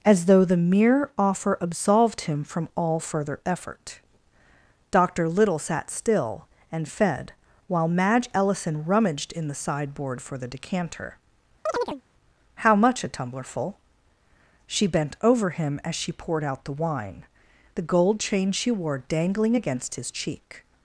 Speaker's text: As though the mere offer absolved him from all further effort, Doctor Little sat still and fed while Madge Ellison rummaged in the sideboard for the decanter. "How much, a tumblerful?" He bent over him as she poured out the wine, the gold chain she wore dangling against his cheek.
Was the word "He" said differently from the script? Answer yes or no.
yes